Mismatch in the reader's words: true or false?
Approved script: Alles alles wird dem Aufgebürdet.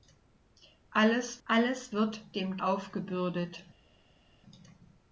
false